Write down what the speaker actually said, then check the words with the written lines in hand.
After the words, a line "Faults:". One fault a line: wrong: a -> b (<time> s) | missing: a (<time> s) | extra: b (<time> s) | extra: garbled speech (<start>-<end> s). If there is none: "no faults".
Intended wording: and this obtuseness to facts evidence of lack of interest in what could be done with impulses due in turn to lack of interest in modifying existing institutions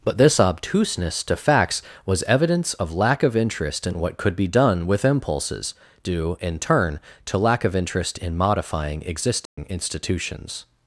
but this obtuseness to facts was evidence of lack of interest in what could be done with impulses due in turn to lack of interest in modifying existing institutions
Faults:
wrong: and -> but (0.0 s)
extra: was (2.0 s)